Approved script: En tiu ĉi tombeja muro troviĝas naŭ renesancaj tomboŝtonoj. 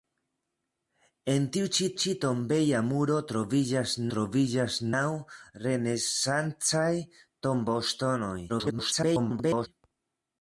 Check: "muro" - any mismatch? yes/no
no